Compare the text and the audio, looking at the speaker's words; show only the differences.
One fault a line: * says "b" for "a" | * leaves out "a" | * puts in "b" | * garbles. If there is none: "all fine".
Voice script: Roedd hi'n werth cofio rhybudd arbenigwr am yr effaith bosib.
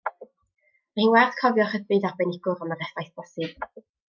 * says "Mae" for "Roedd"